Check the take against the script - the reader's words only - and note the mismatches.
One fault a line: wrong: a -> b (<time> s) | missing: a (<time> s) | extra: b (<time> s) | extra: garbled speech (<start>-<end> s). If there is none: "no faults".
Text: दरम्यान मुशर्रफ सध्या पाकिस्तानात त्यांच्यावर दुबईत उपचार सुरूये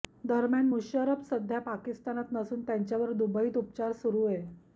extra: नसून (2.3 s)